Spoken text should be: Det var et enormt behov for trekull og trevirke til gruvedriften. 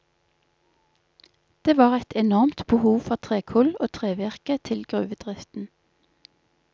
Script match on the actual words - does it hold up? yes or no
yes